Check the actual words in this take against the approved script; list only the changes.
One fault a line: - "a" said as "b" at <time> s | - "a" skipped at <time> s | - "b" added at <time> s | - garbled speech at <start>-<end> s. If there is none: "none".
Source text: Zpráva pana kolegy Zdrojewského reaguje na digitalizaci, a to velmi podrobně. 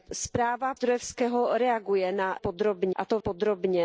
- "pana kolegy" skipped at 0.8 s
- "digitalizaci" said as "podrobně" at 2.4 s
- "velmi" skipped at 3.2 s